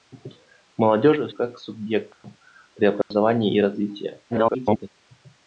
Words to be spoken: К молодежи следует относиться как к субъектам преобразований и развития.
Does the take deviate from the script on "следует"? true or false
true